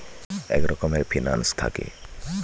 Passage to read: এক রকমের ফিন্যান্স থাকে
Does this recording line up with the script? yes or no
yes